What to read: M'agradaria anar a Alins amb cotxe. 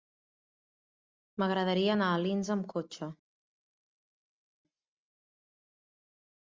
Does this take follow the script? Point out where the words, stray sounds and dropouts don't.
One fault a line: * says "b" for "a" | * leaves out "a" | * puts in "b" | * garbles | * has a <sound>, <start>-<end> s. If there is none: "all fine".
all fine